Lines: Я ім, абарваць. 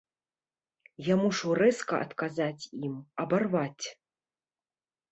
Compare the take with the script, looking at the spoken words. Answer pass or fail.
fail